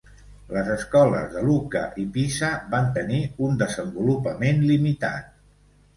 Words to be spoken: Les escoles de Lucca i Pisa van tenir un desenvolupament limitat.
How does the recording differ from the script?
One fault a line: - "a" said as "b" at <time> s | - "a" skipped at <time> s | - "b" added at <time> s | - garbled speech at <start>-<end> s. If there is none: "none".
none